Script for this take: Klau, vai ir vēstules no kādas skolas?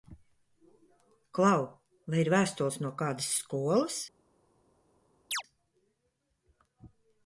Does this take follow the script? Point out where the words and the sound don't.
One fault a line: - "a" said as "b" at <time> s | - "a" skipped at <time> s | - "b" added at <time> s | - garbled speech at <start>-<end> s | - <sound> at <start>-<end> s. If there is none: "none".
- chirp at 5.3-5.4 s